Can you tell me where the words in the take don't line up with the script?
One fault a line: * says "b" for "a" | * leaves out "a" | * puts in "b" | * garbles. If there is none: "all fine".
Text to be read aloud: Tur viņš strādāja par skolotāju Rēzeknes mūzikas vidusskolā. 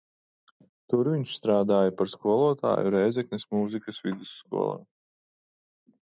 all fine